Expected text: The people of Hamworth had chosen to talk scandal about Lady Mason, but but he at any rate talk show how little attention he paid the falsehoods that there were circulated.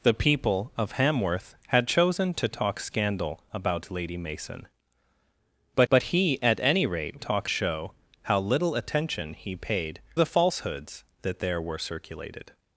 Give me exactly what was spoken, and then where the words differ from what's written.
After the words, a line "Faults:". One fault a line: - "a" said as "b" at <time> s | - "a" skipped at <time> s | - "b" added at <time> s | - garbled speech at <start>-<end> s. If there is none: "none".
The people of Hamworth had chosen to talk scandal about Lady Mason, but but he at any rate talk show how little attention he paid the falsehoods that there were circulated.
Faults:
none